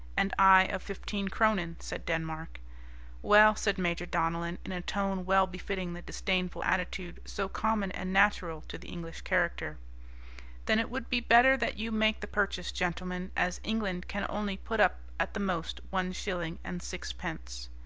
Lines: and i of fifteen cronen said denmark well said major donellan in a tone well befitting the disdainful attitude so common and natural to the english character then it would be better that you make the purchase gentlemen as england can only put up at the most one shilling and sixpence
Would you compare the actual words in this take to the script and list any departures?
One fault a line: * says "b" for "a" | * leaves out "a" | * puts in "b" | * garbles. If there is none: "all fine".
all fine